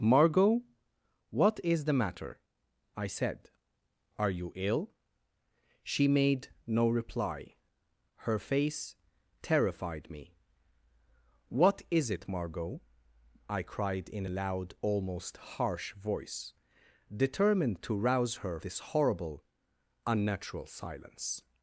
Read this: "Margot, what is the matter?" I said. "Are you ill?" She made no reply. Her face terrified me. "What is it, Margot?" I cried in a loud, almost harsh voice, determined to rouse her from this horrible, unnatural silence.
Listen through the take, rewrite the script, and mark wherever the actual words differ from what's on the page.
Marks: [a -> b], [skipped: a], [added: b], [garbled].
"Margot, what is the matter?" I said. "Are you ill?" She made no reply. Her face terrified me. "What is it, Margot?" I cried in a loud, almost harsh voice, determined to rouse her [skipped: from] this horrible, unnatural silence.